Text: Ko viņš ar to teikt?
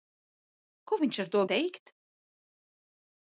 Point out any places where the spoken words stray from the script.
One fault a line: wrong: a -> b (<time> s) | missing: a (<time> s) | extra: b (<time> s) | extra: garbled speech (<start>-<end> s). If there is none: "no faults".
no faults